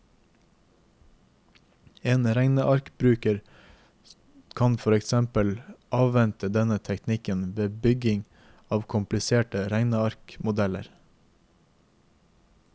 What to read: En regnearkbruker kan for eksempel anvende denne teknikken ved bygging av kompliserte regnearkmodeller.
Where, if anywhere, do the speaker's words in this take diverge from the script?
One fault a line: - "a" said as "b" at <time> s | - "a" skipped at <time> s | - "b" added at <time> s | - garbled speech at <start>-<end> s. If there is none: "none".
none